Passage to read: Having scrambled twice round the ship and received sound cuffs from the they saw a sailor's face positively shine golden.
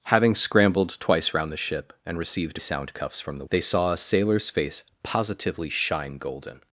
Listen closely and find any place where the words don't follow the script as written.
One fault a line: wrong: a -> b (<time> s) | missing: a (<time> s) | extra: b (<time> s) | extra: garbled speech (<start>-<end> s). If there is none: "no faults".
no faults